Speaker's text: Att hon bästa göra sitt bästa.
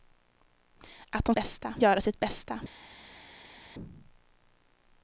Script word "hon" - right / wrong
right